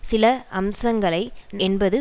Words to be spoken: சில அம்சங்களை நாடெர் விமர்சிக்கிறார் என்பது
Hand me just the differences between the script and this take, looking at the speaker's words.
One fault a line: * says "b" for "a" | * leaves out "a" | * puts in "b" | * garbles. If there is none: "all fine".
* leaves out "நாடெர் விமர்சிக்கிறார்"